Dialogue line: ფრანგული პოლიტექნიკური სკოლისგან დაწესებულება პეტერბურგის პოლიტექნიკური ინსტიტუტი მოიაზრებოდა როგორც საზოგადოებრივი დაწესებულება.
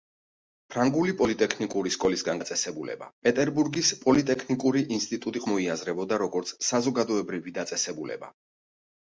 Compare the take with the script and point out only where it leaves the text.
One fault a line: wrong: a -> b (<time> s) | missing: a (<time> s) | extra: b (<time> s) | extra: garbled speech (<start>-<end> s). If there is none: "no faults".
no faults